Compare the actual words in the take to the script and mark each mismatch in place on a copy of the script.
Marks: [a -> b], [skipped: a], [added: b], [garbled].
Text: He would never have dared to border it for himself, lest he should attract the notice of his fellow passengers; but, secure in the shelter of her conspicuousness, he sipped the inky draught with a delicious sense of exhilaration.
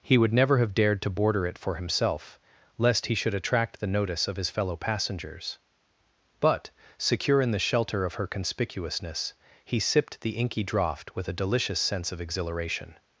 He would never have dared to border it for himself, lest he should attract the notice of his fellow passengers; but, secure in the shelter of her conspicuousness, he sipped the inky draught with a delicious sense of exhilaration.